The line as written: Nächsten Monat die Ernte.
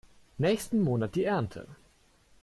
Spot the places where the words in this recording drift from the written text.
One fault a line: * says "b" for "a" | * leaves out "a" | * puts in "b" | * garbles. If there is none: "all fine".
all fine